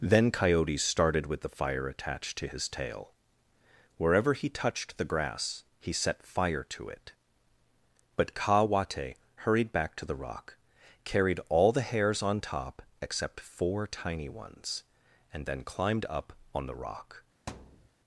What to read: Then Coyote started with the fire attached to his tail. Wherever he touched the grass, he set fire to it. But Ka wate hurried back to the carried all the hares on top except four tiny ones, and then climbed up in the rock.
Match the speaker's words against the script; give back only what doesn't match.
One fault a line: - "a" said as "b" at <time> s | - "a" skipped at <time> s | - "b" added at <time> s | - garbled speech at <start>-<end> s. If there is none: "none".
- "rock" added at 10.2 s
- "in" said as "on" at 16.5 s